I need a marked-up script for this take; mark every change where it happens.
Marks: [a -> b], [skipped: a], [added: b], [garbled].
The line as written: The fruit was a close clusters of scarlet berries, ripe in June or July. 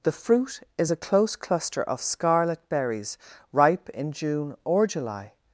The fruit [was -> is] a close [clusters -> cluster] of scarlet berries, ripe in June or July.